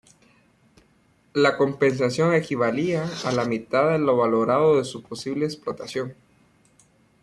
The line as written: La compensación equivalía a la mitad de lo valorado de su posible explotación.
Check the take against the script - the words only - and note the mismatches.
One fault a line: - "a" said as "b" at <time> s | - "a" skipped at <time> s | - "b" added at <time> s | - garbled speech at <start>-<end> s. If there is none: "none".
none